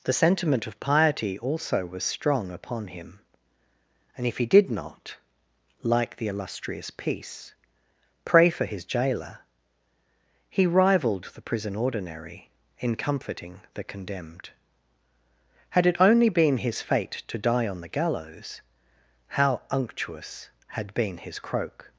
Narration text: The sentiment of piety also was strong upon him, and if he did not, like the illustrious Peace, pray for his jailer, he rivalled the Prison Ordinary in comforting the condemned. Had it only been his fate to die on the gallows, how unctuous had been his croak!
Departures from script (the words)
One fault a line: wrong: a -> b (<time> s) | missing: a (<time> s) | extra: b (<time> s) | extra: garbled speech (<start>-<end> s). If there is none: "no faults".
no faults